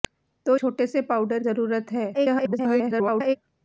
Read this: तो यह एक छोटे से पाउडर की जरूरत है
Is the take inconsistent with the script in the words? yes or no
yes